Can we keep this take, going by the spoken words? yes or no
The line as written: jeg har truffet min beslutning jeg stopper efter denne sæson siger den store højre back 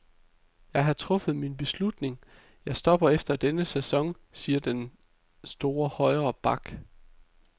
yes